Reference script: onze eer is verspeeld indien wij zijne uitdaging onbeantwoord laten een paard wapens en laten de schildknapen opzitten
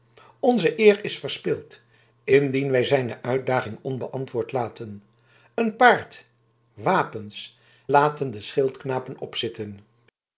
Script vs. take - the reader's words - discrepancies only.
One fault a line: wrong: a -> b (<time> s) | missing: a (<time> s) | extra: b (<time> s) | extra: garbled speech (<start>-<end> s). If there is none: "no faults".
missing: en (7.6 s)